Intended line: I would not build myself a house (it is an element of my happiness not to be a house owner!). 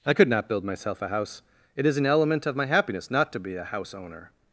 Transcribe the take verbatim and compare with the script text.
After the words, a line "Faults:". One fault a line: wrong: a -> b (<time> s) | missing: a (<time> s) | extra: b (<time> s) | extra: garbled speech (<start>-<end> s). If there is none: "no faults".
I could not build myself a house (it is an element of my happiness not to be a house owner!).
Faults:
wrong: would -> could (0.1 s)